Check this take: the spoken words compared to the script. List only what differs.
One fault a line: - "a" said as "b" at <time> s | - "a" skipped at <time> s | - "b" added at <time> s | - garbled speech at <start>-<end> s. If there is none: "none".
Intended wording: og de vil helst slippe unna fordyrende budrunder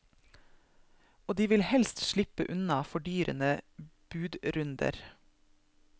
none